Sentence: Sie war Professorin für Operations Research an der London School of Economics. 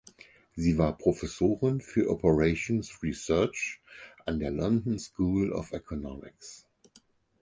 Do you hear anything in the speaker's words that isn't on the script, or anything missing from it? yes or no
no